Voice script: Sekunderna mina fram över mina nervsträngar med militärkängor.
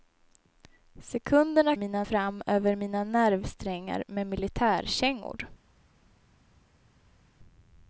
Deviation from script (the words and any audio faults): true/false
false